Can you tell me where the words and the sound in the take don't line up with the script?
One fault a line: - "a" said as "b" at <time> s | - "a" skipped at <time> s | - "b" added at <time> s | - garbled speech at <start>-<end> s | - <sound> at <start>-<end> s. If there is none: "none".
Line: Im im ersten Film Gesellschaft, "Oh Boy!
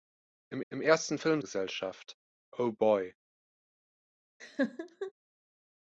- laugh at 4.4-5.1 s